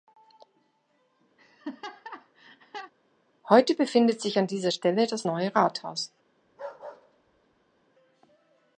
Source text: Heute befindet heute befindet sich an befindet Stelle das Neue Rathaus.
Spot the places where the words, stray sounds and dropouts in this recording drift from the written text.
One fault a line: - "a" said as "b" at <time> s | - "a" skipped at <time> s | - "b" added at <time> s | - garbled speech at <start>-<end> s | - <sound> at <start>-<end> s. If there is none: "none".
- laugh at 1.4-2.9 s
- "heute befindet" skipped at 4.2 s
- "befindet" said as "dieser" at 4.5 s
- bark at 6.4-7.9 s